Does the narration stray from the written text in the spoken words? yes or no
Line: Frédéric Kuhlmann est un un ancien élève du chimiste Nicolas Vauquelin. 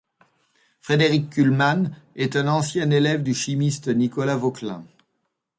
yes